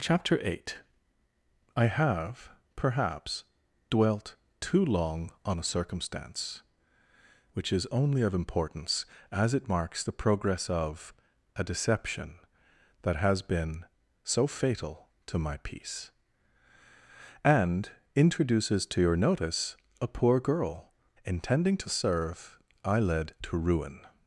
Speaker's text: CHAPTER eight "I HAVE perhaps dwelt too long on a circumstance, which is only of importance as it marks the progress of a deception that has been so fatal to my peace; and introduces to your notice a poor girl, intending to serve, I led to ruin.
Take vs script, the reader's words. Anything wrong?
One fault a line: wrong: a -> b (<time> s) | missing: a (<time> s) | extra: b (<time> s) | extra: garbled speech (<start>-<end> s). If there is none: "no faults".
no faults